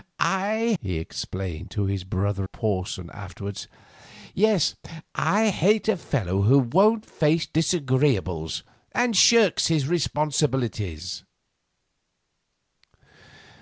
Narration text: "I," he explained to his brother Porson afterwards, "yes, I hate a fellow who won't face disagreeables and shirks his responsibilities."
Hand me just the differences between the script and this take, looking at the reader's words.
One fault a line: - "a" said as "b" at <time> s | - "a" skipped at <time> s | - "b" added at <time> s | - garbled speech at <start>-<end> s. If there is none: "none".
none